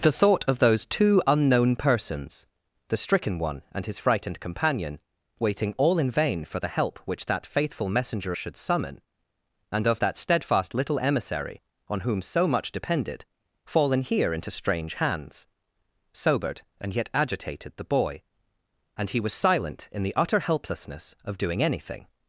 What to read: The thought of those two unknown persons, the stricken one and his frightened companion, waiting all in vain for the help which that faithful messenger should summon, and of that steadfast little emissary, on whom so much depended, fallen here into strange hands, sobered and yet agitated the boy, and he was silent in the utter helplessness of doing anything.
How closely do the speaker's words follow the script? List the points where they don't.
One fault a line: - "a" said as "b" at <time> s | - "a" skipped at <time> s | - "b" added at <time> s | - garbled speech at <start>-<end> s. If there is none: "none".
none